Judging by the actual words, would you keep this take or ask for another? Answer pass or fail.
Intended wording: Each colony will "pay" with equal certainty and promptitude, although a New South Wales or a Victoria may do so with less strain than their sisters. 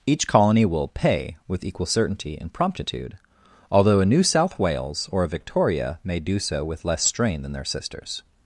pass